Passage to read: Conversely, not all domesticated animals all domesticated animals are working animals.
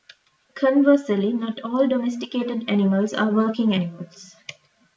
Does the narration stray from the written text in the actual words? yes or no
yes